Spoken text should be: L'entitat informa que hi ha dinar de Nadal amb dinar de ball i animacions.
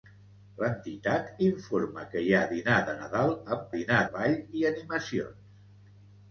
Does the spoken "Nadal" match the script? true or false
true